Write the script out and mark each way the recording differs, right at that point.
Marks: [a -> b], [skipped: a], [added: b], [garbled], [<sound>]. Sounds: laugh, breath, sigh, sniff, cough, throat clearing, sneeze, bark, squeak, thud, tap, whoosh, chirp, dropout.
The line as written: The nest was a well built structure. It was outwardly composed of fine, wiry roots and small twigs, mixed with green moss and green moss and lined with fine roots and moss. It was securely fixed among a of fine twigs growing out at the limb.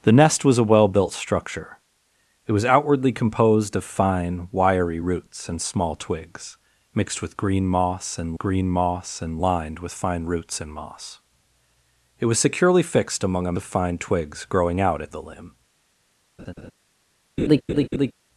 The nest was a well built structure. It was outwardly composed of fine, wiry roots and small twigs, mixed with green moss and green moss and lined with fine roots and moss. It was securely fixed among a of fine twigs growing out at the limb. [laugh] [laugh]